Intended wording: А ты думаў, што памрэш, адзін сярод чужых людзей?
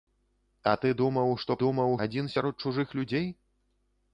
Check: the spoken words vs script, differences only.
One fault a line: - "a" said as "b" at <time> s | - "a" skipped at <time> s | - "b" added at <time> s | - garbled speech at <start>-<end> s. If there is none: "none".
- "памрэш" said as "думаў" at 1.6 s